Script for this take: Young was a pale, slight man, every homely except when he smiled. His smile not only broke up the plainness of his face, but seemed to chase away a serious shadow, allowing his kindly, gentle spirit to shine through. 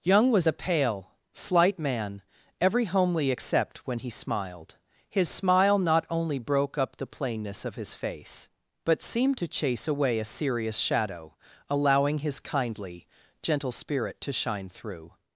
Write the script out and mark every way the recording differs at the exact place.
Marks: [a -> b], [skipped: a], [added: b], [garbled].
Young was a pale, slight man, every homely except when he smiled. His smile not only broke up the plainness of his face, but seemed to chase away a serious shadow, allowing his kindly, gentle spirit to shine through.